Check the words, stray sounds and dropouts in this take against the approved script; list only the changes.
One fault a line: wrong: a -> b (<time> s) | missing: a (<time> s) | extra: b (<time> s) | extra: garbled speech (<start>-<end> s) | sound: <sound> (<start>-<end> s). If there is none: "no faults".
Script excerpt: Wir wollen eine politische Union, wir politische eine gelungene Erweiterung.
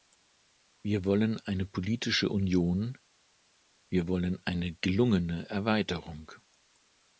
wrong: politische -> wollen (4.1 s)